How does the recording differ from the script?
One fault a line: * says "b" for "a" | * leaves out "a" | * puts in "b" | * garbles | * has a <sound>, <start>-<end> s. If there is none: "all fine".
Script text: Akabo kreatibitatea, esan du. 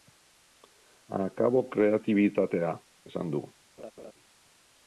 * has a laugh, 3.8-4.1 s